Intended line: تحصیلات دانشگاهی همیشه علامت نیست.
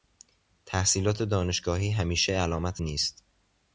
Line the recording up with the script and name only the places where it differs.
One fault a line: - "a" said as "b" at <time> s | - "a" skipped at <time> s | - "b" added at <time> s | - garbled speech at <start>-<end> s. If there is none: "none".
none